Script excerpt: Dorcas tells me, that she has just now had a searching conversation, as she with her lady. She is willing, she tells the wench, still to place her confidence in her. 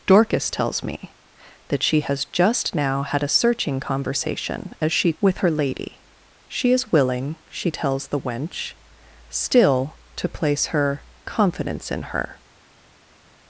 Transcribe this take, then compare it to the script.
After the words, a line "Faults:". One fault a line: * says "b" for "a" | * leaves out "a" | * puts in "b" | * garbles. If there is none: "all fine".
Dorcas tells me, that she has just now had a searching conversation, as she with her lady. She is willing, she tells the wench, still to place her confidence in her.
Faults:
all fine